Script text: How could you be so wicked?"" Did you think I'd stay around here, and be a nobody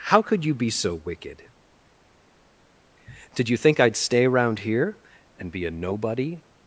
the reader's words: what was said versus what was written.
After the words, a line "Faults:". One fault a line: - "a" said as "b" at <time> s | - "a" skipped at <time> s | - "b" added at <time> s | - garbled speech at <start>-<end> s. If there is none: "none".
How could you be so wicked?"" Did you think I'd stay around here, and be a nobody
Faults:
none